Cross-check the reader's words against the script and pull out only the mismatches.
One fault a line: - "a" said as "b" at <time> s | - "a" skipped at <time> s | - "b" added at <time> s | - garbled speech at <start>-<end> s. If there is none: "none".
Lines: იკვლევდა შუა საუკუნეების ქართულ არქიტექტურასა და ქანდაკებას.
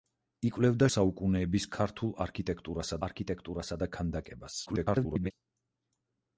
- "შუა" skipped at 0.9 s
- "არქიტექტურასა" added at 3.1 s
- garbled speech at 4.7-5.3 s